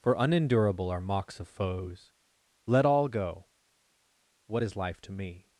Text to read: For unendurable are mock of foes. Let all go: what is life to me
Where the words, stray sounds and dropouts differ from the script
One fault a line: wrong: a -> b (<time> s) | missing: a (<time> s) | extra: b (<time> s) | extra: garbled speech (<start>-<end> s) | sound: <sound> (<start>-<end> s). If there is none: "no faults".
wrong: mock -> mocks (1.0 s)